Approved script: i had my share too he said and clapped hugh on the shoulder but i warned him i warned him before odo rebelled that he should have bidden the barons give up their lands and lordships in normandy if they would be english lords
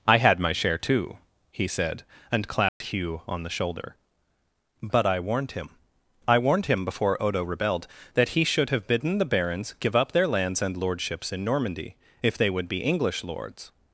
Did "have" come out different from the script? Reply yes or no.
no